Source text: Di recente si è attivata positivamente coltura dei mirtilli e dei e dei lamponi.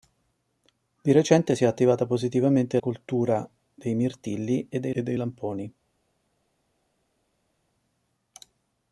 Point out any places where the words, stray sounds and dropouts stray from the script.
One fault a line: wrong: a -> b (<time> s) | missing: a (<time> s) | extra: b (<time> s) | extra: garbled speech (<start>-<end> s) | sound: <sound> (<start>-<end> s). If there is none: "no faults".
no faults